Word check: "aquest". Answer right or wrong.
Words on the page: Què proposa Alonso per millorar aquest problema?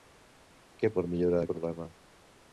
wrong